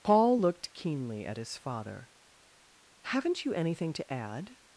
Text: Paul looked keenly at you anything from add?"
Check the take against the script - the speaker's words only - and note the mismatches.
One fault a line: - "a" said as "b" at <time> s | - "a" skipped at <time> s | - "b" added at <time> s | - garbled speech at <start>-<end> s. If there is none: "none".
- "his father Haven't" added at 1.4 s
- "from" said as "to" at 3.9 s